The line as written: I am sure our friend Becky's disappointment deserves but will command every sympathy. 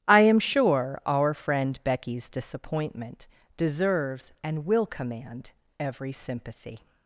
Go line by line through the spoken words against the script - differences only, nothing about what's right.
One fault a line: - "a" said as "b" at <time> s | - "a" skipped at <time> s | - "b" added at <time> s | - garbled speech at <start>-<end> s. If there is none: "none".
- "but" said as "and" at 4.4 s